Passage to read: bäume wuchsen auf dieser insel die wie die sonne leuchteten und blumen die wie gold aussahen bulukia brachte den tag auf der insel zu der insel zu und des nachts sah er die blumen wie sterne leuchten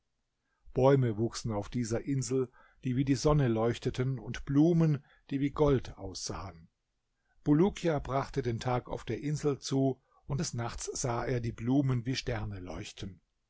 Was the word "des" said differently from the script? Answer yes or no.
no